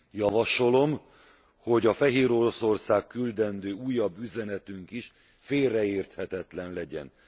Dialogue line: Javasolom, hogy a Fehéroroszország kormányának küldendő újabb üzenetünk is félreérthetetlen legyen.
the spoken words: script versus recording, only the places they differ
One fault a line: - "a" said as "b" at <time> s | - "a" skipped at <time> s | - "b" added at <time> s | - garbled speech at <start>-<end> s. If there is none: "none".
- "kormányának" skipped at 3.1 s